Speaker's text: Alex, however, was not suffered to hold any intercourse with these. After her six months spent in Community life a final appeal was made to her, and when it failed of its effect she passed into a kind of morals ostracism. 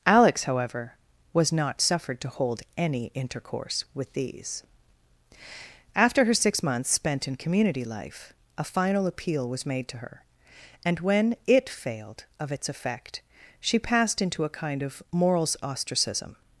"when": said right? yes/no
yes